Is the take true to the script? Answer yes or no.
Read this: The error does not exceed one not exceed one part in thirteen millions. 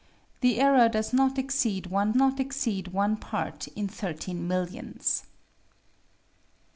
yes